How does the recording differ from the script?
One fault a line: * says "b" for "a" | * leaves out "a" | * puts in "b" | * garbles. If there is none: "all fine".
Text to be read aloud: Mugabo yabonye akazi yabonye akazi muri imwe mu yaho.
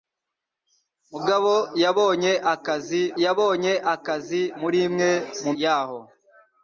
all fine